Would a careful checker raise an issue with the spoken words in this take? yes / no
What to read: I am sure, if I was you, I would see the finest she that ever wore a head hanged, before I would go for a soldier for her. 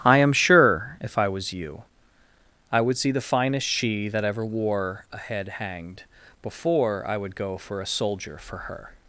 no